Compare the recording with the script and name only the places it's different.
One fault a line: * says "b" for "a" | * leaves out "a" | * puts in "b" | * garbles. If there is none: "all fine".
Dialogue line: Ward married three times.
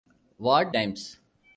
* leaves out "married three"